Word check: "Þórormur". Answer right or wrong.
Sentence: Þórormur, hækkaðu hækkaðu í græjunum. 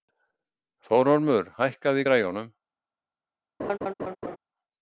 right